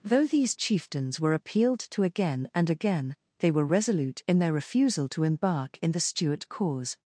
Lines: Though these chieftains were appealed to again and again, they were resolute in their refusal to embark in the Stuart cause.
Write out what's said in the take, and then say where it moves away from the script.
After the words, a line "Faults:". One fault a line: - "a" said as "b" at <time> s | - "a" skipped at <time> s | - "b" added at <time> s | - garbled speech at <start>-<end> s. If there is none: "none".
Though these chieftains were appealed to again and again, they were resolute in their refusal to embark in the Stuart cause.
Faults:
none